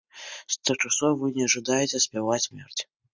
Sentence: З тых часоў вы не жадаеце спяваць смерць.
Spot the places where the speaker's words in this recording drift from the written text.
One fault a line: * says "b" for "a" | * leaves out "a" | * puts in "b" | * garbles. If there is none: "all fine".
all fine